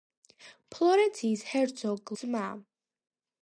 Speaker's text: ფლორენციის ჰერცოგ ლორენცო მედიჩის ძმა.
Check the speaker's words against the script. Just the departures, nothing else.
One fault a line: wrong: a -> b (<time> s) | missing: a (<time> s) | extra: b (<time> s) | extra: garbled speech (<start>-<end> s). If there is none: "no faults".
missing: ლორენცო მედიჩის (2.1 s)